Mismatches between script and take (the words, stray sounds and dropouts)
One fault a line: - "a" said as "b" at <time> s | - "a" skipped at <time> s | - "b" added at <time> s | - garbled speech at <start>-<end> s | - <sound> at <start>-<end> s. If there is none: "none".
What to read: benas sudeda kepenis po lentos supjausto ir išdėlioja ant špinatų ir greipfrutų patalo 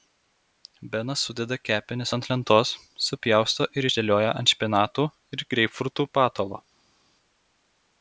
- "po" said as "ant" at 2.2 s